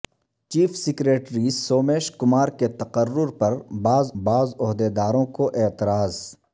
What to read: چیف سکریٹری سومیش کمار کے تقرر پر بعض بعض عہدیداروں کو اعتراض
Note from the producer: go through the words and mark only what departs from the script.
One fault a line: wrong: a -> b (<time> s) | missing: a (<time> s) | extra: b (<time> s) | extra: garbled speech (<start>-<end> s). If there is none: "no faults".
no faults